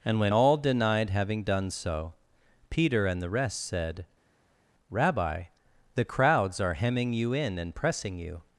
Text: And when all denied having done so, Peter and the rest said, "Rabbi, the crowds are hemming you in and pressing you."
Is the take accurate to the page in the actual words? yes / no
yes